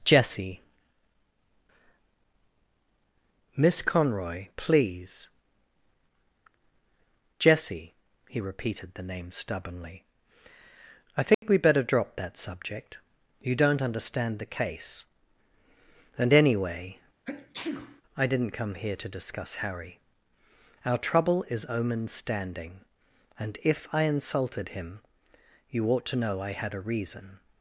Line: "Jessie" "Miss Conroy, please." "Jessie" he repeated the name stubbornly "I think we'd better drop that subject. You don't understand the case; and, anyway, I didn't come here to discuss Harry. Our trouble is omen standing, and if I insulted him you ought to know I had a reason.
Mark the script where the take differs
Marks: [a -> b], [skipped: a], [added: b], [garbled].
"Jessie" "Miss Conroy, please." "Jessie" he repeated the name stubbornly "I think we'd better drop that subject. You don't understand the case; and, anyway, I didn't come here to discuss Harry. Our trouble is omen standing, and if I insulted him you ought to know I had a reason.